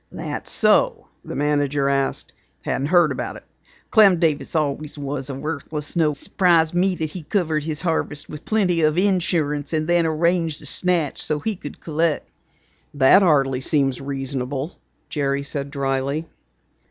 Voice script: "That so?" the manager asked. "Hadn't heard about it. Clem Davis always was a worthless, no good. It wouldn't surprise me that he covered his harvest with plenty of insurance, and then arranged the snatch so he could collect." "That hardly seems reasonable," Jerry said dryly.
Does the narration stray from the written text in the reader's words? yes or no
yes